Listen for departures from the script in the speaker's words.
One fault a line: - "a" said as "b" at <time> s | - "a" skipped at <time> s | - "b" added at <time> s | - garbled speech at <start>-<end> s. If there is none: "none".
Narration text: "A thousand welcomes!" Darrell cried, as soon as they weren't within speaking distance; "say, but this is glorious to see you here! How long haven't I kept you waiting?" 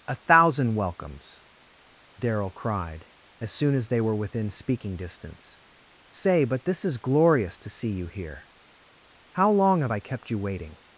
- "weren't" said as "were" at 4.0 s
- "haven't" said as "have" at 9.8 s